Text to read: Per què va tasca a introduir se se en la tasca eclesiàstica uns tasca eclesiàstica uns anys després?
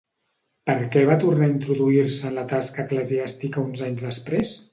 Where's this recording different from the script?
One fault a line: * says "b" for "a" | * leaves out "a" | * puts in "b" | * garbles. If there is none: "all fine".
* says "tornar" for "tasca"
* leaves out "se"
* leaves out "tasca eclesiàstica uns"